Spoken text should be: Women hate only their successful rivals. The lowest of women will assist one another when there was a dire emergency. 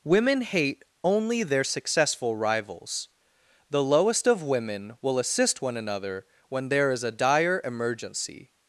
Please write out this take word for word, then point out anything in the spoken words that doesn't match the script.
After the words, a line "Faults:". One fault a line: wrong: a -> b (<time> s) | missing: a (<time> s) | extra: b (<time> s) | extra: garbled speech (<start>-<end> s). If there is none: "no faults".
Women hate only their successful rivals. The lowest of women will assist one another when there is a dire emergency.
Faults:
wrong: was -> is (6.9 s)